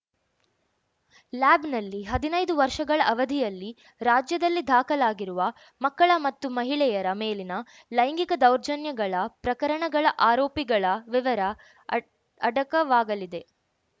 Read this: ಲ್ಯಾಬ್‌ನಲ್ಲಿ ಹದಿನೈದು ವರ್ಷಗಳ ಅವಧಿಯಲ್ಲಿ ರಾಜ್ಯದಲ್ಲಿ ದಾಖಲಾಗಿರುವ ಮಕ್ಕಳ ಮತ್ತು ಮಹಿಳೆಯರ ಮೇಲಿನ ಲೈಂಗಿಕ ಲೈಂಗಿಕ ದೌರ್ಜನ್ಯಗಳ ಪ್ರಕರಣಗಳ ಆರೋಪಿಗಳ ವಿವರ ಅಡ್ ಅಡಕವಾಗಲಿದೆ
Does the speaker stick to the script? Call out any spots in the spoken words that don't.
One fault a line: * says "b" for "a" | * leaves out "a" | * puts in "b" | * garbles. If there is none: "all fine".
* leaves out "ಲೈಂಗಿಕ"